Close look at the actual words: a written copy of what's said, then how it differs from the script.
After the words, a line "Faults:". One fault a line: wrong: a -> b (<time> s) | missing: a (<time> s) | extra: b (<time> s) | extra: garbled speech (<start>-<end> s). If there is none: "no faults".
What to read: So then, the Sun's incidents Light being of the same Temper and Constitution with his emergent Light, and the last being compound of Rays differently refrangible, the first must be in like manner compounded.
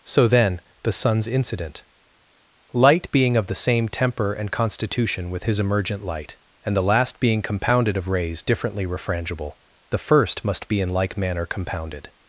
So then, the Sun's incident Light being of the same Temper and Constitution with his emergent Light, and the last being compounded of Rays differently refrangible, the first must be in like manner compounded.
Faults:
wrong: incidents -> incident (1.3 s)
wrong: compound -> compounded (7.4 s)